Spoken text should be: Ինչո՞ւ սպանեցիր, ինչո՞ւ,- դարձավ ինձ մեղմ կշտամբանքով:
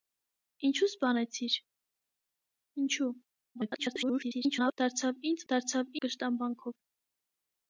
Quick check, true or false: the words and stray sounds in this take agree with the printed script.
false